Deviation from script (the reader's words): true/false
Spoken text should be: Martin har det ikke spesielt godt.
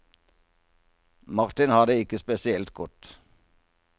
false